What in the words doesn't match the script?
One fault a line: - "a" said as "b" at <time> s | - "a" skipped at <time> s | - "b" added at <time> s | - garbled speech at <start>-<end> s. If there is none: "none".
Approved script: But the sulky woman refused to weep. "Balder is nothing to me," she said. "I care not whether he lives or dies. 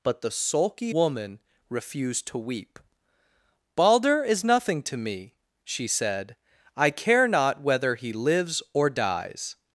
none